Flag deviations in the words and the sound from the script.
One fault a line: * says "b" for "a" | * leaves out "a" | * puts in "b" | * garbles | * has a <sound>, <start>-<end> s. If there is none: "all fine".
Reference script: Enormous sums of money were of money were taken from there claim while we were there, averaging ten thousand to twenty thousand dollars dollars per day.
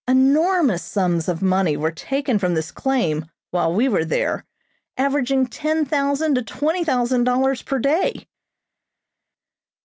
* leaves out "of money were"
* says "this" for "there"
* leaves out "dollars"